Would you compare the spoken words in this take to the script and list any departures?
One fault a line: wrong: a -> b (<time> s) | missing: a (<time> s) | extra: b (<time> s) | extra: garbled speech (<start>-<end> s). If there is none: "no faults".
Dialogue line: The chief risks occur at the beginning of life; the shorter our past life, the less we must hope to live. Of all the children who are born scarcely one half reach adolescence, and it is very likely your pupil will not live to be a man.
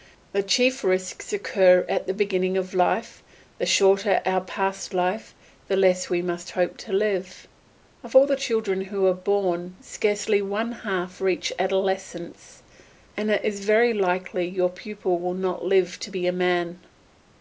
no faults